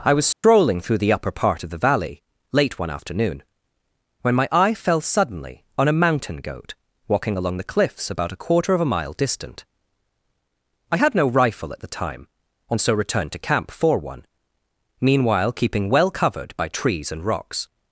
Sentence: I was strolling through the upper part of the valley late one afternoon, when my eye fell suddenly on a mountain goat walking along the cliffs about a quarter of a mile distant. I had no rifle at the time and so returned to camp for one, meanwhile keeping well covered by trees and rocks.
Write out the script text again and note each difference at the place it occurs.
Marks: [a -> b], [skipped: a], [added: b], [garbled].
I was strolling through the upper part of the valley late one afternoon, when my eye fell suddenly on a mountain goat walking along the cliffs about a quarter of a mile distant. I had no rifle at the time and so returned to camp for one, meanwhile keeping well covered by trees and rocks.